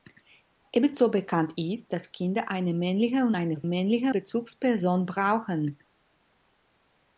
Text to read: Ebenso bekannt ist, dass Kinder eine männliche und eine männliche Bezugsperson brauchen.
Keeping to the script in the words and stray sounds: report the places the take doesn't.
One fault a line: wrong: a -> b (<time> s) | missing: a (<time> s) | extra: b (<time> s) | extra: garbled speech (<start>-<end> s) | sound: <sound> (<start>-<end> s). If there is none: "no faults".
no faults